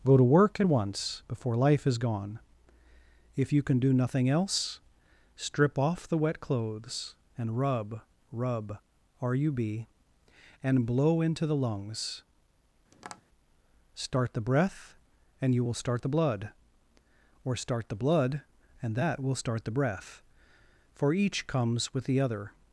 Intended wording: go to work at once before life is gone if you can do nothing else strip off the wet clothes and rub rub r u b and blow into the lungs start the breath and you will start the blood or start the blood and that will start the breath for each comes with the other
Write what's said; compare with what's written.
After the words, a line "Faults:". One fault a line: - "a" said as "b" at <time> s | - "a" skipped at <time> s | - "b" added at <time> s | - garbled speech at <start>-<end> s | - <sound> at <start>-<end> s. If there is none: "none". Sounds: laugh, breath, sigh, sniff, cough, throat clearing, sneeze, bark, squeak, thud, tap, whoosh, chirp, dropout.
go to work at once before life is gone if you can do nothing else strip off the wet clothes and rub rub r u b and blow into the lungs start the breath and you will start the blood or start the blood and that will start the breath for each comes with the other
Faults:
- tap at 12.9-13.2 s